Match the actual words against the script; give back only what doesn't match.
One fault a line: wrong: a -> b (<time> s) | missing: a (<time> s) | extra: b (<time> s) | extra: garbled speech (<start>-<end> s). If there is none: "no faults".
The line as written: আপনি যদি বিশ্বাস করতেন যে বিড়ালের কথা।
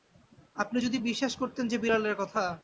no faults